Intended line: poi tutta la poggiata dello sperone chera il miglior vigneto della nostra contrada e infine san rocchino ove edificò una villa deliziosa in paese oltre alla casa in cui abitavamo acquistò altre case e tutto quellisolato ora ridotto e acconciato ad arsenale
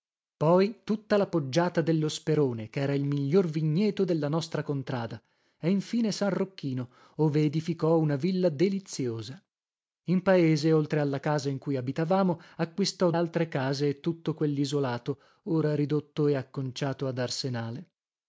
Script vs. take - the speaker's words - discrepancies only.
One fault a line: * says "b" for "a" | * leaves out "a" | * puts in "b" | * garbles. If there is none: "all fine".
all fine